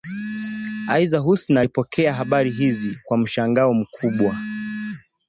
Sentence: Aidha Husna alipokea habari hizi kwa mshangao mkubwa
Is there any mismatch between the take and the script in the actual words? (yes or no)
no